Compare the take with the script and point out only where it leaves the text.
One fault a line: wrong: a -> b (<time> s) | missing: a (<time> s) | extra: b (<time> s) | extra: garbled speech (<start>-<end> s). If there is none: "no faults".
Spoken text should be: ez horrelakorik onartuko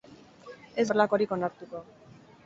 no faults